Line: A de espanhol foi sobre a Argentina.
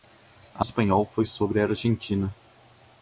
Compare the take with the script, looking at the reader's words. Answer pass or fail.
pass